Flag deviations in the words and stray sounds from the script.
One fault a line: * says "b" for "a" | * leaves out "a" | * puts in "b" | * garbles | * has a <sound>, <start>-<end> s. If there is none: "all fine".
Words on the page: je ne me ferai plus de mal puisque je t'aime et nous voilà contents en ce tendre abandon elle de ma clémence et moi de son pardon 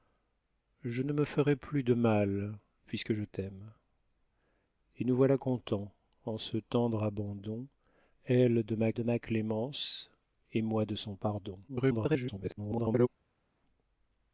* puts in "de ma"
* garbles